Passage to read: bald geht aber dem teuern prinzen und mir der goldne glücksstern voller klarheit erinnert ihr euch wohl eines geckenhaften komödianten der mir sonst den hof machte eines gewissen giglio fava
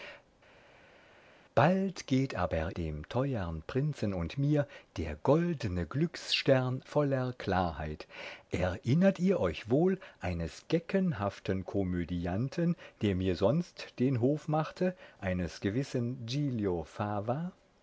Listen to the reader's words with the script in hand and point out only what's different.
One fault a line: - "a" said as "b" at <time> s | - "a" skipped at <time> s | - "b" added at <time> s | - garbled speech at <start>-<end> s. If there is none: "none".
none